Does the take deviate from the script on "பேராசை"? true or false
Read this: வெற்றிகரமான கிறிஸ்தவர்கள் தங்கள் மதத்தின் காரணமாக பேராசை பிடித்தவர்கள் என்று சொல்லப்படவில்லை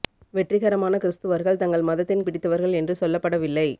true